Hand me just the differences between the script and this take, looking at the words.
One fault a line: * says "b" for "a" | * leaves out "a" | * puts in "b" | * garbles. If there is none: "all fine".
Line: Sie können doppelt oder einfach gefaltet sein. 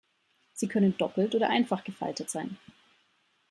all fine